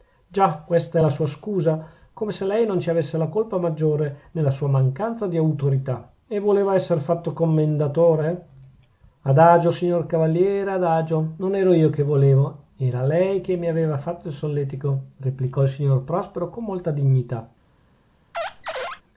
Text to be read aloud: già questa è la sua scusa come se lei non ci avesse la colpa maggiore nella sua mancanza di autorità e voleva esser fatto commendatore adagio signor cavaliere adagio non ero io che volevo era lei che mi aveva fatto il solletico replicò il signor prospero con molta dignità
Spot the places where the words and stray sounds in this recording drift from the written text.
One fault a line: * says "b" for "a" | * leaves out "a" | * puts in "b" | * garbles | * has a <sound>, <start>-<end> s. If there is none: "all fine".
* has a squeak, 18.3-19.0 s